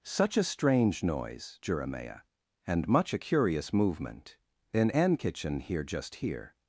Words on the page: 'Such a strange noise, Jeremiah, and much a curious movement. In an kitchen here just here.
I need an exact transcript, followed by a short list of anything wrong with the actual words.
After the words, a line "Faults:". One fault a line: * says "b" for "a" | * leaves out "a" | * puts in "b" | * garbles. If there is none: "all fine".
'Such a strange noise, Jeremiah, and much a curious movement. In an kitchen here just here.
Faults:
all fine